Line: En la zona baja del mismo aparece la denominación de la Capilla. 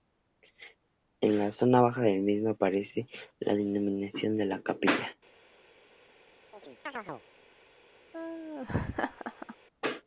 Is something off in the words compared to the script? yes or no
no